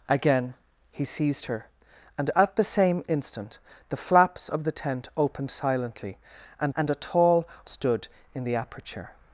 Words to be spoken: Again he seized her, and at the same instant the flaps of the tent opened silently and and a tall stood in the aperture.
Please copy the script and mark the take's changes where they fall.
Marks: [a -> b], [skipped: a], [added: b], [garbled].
Again he seized her, and at the same instant the flaps of the tent opened silently and and a tall stood in the aperture.